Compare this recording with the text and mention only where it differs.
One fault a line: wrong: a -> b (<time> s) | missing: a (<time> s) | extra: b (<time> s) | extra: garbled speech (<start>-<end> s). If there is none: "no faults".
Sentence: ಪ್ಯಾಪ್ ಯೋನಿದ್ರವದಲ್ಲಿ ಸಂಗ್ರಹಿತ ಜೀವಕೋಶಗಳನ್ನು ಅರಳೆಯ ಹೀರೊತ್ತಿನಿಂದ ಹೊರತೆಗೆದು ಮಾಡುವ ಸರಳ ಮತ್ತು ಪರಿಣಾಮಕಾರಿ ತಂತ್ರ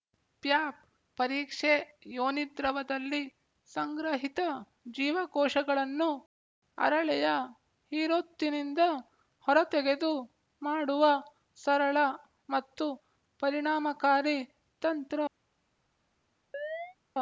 extra: ಪರೀಕ್ಷೆ (1.2 s)